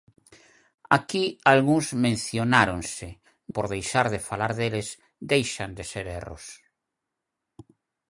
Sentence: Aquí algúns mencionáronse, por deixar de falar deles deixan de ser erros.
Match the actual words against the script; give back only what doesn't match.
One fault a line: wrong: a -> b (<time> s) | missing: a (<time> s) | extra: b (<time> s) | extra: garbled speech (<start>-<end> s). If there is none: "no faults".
no faults